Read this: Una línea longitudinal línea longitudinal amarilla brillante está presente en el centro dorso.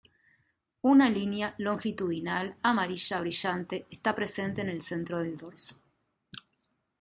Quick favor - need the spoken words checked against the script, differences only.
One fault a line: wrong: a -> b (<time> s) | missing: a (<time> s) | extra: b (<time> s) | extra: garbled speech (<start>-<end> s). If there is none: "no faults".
missing: línea longitudinal (2.6 s)
extra: del (5.2 s)